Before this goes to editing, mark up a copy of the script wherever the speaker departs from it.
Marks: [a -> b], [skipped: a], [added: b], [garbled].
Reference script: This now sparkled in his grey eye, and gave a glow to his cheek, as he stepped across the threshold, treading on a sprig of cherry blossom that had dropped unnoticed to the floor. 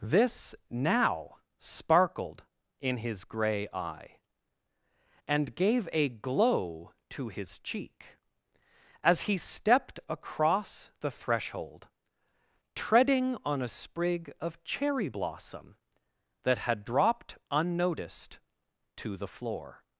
This now sparkled in his grey eye, and gave a glow to his cheek, as he stepped across the threshold, treading on a sprig of cherry blossom that had dropped unnoticed to the floor.